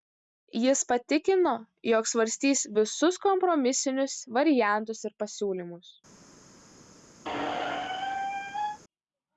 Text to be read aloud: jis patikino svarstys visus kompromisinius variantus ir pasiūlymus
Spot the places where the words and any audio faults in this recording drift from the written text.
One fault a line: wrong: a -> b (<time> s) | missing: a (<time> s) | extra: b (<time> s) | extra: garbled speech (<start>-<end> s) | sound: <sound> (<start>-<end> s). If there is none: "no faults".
extra: jog (1.9 s)
sound: squeak (7.2-8.8 s)